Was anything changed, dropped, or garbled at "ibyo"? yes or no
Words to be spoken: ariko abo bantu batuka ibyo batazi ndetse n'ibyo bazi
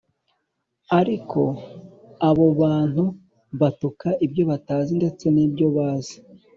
no